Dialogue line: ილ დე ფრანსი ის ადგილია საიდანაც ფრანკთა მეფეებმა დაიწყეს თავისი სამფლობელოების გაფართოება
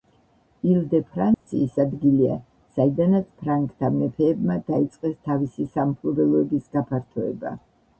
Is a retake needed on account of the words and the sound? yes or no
yes